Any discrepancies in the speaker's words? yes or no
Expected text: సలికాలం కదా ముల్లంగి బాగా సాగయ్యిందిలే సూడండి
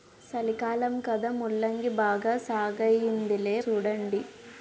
no